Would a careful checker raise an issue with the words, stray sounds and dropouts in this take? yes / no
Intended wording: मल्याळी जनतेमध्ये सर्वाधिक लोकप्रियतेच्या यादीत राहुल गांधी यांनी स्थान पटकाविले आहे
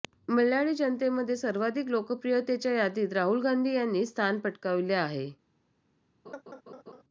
yes